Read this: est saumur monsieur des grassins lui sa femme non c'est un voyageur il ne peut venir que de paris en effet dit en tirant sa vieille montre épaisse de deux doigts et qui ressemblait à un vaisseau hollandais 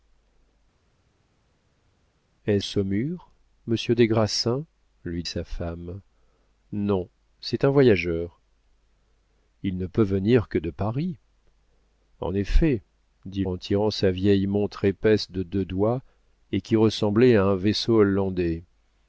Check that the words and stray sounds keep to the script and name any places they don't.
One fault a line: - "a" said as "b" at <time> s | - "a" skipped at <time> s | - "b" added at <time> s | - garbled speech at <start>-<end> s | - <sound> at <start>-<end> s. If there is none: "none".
none